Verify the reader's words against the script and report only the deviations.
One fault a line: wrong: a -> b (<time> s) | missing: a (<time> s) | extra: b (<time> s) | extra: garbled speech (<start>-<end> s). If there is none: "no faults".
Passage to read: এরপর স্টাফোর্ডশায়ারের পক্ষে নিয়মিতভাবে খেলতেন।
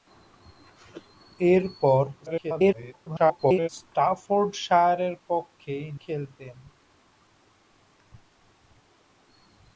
extra: garbled speech (2.3-3.7 s)
missing: নিয়মিতভাবে (5.7 s)